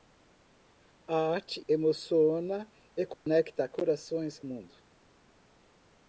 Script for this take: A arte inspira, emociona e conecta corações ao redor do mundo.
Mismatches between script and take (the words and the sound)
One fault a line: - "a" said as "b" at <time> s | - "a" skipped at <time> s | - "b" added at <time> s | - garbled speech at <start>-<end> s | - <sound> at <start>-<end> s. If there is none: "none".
- "inspira" skipped at 1.6 s
- dropout at 3.1-3.3 s
- "ao redor do" skipped at 4.4 s